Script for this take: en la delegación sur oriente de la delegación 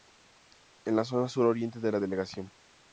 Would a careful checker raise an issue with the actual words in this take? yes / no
yes